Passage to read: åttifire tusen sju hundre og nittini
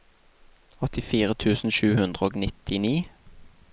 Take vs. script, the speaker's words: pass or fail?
pass